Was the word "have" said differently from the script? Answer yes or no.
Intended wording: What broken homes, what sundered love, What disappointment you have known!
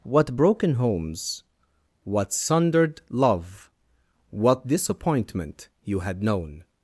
yes